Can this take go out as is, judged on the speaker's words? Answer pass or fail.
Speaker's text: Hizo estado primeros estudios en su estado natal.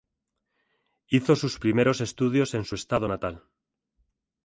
fail